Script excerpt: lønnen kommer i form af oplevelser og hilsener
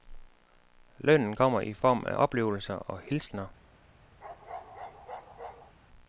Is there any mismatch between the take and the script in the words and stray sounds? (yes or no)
yes